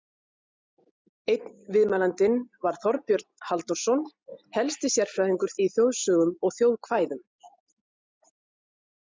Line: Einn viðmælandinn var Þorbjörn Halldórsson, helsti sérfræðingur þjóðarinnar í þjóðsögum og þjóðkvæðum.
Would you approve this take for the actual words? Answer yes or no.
no